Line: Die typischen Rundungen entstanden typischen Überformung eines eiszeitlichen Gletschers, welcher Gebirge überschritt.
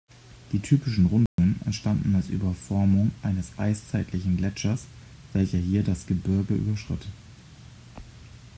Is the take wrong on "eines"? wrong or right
right